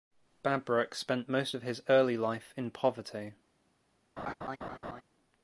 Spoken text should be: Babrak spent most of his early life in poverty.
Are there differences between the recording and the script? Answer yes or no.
no